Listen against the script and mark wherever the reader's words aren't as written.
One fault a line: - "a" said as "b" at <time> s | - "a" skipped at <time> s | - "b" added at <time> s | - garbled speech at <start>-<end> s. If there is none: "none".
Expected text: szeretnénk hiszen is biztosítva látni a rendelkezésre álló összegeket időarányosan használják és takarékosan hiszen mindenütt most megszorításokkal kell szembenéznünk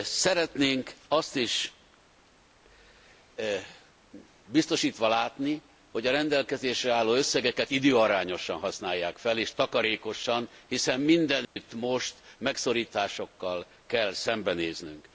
- "hiszen" said as "azt" at 1.1 s
- "hogy" added at 5.9 s
- "fel" added at 9.2 s